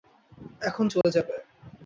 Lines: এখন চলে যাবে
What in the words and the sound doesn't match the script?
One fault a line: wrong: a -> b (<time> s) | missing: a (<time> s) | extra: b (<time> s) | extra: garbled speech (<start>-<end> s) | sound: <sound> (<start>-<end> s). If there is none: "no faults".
sound: dropout (1.0-1.0 s)